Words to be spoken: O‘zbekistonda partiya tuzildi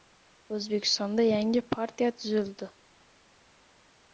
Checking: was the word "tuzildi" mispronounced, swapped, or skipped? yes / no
no